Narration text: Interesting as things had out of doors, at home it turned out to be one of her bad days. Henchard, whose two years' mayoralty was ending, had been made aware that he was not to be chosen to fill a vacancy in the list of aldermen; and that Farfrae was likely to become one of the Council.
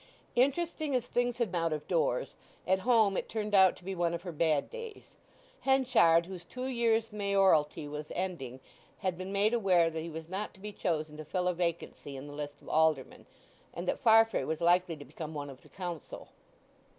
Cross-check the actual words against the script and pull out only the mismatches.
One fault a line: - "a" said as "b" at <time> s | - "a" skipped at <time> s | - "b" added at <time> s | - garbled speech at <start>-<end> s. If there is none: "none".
none